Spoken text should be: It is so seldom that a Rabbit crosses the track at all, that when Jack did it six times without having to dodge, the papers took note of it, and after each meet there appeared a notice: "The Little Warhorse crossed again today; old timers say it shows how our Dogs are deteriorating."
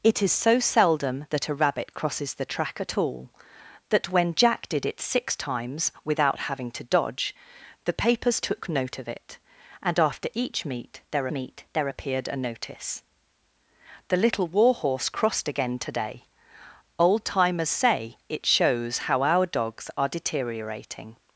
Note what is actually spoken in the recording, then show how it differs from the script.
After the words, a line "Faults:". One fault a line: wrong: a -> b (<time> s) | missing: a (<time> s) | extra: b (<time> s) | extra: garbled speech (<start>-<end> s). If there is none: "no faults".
It is so seldom that a Rabbit crosses the track at all, that when Jack did it six times without having to dodge, the papers took note of it, and after each meet there meet there appeared a notice: "The Little Warhorse crossed again today; old timers say it shows how our Dogs are deteriorating."
Faults:
extra: meet there (11.3 s)